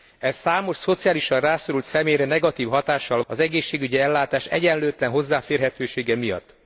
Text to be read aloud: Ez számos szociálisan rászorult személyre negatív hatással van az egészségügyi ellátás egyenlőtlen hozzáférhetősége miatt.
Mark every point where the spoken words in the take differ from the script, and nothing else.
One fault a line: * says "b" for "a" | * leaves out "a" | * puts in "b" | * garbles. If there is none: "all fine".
* leaves out "van"